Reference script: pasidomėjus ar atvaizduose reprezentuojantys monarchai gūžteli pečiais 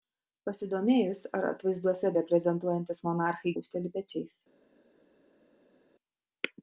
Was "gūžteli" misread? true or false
false